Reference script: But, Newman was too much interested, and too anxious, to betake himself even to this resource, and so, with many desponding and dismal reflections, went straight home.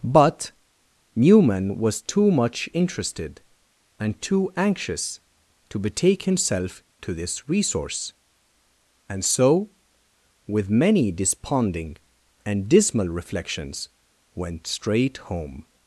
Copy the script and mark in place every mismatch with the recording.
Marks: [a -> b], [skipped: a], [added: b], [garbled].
But, Newman was too much interested, and too anxious, to betake himself [skipped: even] to this resource, and so, with many desponding and dismal reflections, went straight home.